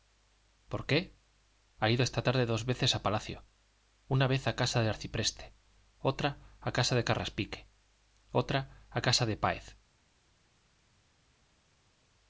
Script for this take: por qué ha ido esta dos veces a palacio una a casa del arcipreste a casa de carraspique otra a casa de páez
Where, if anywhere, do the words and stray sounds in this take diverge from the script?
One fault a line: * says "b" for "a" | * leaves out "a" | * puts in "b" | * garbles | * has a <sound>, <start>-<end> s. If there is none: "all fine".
* puts in "tarde"
* puts in "vez"
* puts in "otra"